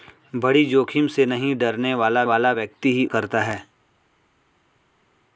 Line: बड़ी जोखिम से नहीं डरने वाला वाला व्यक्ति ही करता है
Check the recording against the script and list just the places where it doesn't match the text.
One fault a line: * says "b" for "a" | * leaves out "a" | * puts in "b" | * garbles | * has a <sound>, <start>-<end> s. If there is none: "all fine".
all fine